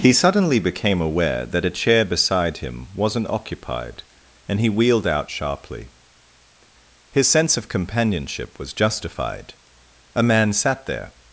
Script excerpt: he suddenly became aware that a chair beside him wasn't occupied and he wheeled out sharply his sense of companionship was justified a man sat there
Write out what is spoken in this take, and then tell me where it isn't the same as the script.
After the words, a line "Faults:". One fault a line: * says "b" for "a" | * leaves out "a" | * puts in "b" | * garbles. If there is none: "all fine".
he suddenly became aware that a chair beside him wasn't occupied and he wheeled out sharply his sense of companionship was justified a man sat there
Faults:
all fine